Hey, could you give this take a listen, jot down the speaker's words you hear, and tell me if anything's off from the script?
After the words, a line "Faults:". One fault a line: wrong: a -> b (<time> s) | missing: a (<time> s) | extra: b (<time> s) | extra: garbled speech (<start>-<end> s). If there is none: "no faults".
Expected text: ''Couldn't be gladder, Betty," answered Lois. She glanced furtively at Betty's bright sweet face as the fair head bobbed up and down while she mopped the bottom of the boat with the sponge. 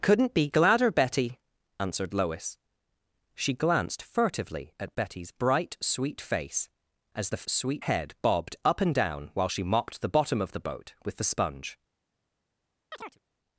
''Couldn't be gladder, Betty," answered Lois. She glanced furtively at Betty's bright sweet face as the sweet head bobbed up and down while she mopped the bottom of the boat with the sponge.
Faults:
wrong: fair -> sweet (7.4 s)